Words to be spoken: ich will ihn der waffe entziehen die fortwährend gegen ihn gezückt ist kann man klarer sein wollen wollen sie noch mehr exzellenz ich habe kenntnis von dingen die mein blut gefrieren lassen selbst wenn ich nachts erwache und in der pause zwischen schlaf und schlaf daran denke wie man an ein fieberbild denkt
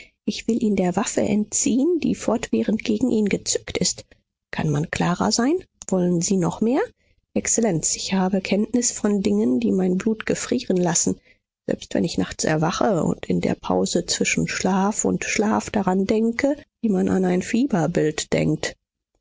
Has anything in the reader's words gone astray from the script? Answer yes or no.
yes